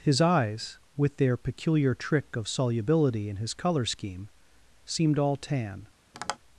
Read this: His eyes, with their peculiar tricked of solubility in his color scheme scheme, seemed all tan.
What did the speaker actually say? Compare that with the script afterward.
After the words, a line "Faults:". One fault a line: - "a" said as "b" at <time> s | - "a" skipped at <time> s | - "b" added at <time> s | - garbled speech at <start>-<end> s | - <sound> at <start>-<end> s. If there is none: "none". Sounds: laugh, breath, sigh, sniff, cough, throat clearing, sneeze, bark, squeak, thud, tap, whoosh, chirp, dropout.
His eyes, with their peculiar trick of solubility in his color scheme, seemed all tan.
Faults:
- "tricked" said as "trick" at 1.9 s
- "scheme" skipped at 4.3 s
- tap at 6.1-6.4 s